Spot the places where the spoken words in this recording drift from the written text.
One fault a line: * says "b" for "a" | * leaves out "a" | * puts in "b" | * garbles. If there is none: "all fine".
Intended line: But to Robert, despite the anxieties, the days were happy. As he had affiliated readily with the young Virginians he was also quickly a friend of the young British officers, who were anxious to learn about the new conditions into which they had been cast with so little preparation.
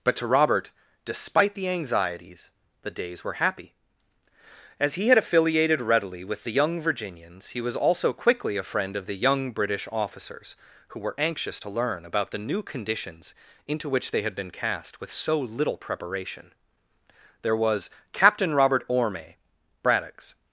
* puts in "There was Captain Robert Orme Braddock's"